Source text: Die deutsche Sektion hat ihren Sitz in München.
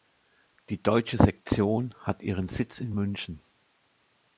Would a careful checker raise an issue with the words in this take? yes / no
no